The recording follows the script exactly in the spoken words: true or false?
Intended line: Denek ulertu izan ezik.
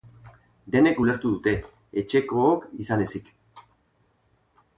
false